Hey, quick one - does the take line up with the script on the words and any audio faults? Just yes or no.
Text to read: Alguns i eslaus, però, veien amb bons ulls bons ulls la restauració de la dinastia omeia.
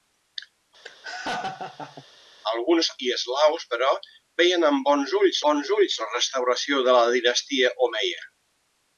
no